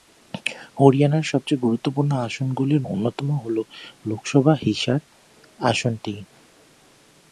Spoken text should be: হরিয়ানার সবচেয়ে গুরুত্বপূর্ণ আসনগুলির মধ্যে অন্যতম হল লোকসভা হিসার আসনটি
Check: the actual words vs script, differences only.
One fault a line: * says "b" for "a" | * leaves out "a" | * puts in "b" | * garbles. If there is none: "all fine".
* leaves out "মধ্যে"